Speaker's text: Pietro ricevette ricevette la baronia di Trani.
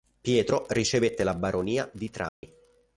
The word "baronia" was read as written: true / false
true